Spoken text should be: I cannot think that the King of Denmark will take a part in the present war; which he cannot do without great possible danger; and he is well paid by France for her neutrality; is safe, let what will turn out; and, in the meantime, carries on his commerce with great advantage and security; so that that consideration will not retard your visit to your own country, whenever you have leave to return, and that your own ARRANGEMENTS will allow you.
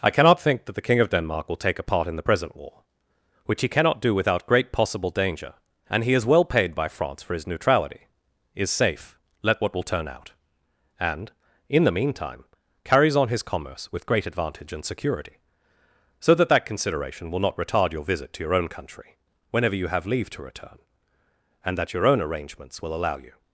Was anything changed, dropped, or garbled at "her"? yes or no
yes